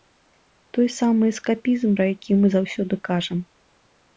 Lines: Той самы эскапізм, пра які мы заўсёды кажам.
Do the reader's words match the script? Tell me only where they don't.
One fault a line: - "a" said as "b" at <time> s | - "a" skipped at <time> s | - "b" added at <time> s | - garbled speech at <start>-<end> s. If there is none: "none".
none